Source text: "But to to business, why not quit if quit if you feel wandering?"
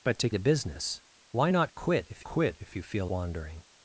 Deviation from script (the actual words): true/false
false